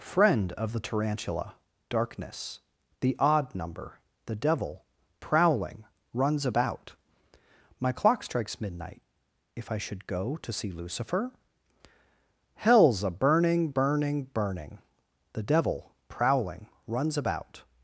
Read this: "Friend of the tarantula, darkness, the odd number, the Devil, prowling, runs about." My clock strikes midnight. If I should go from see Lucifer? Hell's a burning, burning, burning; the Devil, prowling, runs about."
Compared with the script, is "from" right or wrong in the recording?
wrong